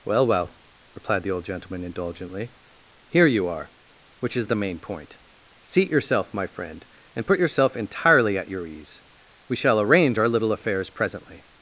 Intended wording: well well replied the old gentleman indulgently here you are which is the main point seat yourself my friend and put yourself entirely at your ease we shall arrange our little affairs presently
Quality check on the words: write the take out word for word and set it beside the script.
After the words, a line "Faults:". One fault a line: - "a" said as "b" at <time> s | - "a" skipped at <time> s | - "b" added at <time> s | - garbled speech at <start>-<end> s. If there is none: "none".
well well replied the old gentleman indulgently here you are which is the main point seat yourself my friend and put yourself entirely at your ease we shall arrange our little affairs presently
Faults:
none